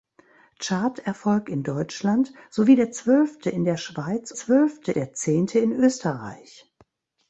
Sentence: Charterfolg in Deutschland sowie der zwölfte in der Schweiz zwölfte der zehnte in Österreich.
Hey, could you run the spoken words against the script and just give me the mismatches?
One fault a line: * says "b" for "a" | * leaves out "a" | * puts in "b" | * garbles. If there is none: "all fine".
all fine